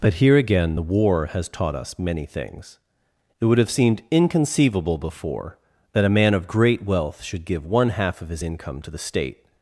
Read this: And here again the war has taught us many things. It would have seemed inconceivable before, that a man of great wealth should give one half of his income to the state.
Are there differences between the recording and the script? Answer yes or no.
yes